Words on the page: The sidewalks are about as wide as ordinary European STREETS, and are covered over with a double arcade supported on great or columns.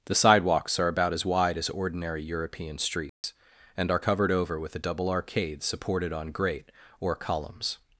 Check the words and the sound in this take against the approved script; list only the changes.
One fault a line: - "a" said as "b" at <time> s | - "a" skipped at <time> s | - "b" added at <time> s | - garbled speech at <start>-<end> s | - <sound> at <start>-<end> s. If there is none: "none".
- dropout at 3.1-3.2 s